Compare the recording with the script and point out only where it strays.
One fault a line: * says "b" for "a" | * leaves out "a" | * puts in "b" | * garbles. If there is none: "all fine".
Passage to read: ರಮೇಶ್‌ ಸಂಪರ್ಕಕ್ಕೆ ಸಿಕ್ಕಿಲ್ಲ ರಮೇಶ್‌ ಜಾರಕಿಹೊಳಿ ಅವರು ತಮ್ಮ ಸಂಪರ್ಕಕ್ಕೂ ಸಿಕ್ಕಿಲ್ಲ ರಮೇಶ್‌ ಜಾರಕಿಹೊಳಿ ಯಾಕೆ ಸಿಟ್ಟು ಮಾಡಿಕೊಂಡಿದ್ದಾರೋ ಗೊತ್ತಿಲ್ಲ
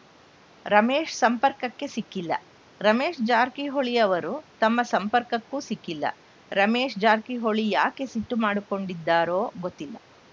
all fine